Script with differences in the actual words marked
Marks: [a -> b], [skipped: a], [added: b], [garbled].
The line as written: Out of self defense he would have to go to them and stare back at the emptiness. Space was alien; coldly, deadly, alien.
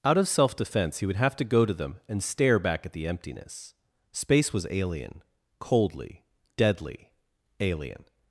Out of self defense he would have to go to them and stare back at the emptiness. Space was alien; coldly, deadly, alien.